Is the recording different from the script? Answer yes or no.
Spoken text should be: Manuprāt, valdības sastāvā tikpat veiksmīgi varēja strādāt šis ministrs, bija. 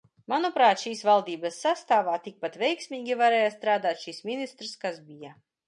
yes